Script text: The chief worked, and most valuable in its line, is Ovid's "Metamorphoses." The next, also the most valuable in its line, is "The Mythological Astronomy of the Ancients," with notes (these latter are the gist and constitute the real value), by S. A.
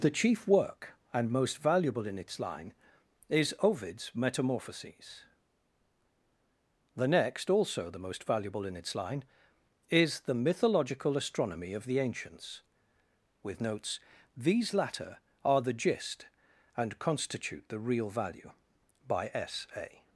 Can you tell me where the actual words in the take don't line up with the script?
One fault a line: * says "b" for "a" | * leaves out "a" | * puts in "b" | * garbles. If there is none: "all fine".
* says "work" for "worked"